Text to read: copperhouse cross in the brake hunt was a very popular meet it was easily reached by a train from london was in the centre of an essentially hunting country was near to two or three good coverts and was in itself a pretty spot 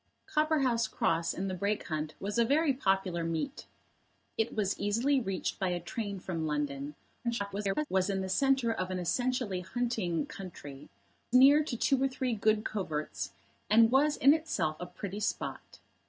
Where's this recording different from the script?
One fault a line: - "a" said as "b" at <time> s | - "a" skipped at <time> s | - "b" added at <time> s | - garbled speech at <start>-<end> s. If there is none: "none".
- garbled speech at 7.2-7.9 s
- "was" skipped at 10.9 s